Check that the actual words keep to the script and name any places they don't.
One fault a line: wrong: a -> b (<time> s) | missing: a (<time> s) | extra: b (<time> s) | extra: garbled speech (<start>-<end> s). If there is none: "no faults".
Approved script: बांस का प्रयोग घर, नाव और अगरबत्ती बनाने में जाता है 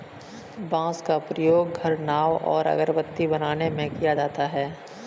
extra: किया (3.9 s)